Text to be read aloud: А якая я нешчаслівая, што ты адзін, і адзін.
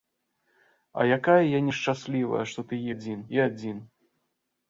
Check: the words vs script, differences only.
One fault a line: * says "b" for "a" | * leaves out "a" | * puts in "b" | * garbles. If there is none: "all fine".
all fine